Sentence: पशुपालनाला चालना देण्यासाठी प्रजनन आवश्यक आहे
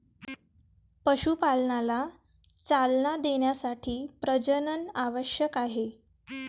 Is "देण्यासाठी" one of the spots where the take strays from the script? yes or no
no